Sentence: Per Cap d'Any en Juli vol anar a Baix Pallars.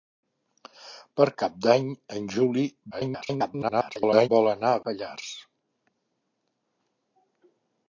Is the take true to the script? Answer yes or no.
no